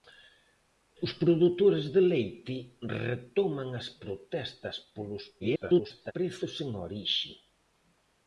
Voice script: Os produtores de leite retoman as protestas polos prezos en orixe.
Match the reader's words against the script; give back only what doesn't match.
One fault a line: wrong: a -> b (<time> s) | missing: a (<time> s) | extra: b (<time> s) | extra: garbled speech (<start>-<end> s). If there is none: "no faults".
extra: garbled speech (5.4-6.1 s)